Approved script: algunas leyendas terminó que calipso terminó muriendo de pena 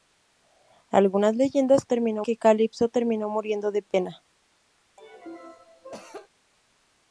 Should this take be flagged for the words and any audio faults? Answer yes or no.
yes